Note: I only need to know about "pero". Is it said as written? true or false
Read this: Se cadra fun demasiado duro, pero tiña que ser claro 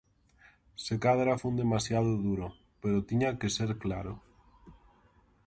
true